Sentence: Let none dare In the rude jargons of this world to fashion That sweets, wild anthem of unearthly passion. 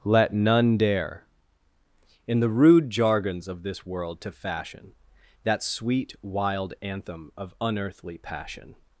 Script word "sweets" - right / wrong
wrong